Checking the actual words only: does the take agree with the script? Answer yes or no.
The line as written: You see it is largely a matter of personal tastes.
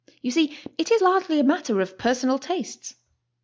yes